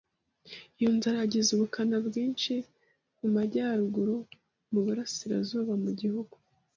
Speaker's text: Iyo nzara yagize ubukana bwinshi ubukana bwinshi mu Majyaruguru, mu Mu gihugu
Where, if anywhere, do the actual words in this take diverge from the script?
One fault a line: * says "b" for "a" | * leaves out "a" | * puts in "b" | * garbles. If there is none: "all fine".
* leaves out "ubukana bwinshi"
* puts in "Burasirazuba"